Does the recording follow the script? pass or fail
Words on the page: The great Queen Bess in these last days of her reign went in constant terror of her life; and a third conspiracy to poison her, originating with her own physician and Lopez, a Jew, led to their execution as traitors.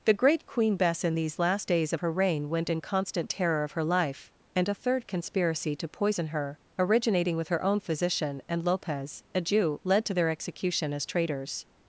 pass